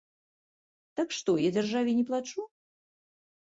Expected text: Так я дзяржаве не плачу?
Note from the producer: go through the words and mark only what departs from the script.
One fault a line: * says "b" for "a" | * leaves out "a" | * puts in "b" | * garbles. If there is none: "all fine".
* puts in "што"